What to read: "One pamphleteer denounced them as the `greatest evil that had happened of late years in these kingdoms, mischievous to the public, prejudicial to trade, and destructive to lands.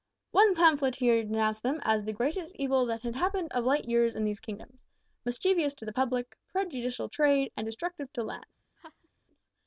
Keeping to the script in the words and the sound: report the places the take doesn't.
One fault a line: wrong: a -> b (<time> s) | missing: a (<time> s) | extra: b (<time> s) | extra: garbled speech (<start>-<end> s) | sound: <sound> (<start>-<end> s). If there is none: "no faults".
missing: to (7.1 s)
sound: laugh (8.8-9.1 s)